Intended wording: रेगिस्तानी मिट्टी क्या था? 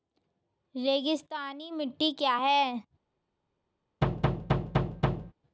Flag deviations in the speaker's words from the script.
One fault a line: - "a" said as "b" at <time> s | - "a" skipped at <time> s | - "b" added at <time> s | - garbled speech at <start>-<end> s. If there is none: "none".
- "था" said as "है" at 2.4 s